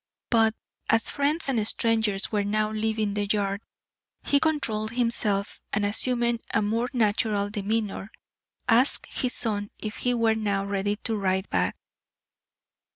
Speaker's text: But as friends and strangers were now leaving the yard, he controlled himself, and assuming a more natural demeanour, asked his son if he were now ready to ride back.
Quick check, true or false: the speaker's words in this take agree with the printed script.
true